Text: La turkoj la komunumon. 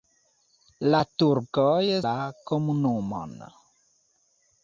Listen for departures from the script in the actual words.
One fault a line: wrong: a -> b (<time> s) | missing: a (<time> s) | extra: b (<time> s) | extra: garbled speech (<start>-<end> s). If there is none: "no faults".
no faults